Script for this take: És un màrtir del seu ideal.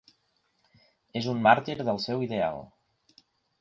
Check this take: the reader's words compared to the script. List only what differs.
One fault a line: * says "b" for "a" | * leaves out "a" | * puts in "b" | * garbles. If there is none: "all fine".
all fine